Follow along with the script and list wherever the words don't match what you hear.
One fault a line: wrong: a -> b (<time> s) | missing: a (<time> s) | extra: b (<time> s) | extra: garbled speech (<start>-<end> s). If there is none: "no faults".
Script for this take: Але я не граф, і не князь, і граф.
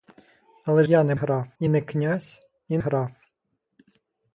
no faults